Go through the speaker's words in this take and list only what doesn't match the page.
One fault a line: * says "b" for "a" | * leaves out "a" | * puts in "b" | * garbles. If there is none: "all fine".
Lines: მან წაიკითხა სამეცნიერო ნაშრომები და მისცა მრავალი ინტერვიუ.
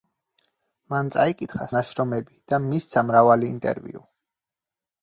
* leaves out "სამეცნიერო"